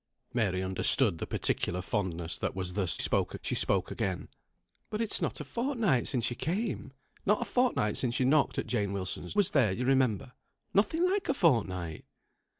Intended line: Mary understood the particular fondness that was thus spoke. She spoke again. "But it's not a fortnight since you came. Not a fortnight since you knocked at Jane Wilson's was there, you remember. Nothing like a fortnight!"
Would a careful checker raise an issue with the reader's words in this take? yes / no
no